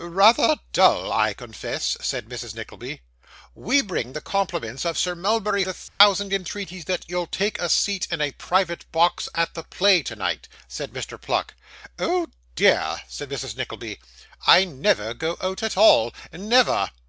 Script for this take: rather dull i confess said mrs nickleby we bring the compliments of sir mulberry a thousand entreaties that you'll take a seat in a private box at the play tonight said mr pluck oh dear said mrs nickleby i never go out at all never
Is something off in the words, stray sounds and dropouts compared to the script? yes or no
yes